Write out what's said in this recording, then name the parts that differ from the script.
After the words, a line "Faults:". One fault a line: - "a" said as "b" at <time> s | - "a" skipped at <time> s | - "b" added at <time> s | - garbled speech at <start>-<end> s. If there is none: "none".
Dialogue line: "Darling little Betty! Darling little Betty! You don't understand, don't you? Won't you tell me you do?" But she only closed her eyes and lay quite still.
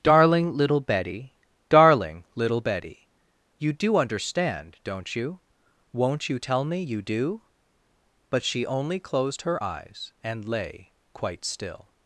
"Darling little Betty! Darling little Betty! You do understand, don't you? Won't you tell me you do?" But she only closed her eyes and lay quite still.
Faults:
- "don't" said as "do" at 3.7 s